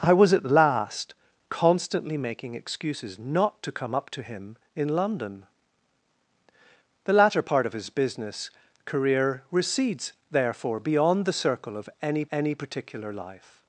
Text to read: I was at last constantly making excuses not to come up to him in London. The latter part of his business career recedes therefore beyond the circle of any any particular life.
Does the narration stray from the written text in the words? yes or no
no